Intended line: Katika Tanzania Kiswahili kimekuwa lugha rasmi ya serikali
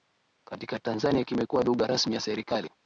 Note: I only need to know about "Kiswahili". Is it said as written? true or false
false